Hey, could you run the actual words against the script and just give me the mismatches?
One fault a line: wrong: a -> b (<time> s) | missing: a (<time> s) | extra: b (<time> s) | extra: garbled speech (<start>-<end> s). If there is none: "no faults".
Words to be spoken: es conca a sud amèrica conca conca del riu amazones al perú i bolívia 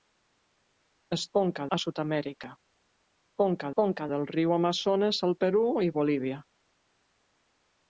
no faults